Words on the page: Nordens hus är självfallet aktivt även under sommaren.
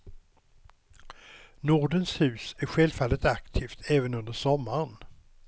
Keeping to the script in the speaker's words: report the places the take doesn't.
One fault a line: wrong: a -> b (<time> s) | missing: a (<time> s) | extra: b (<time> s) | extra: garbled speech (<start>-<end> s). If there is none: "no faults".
no faults